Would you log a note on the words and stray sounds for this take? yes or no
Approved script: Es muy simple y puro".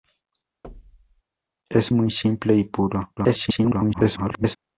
yes